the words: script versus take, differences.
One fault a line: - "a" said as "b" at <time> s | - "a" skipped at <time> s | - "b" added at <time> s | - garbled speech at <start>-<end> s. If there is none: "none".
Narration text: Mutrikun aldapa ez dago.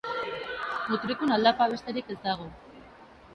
- "besterik" added at 1.8 s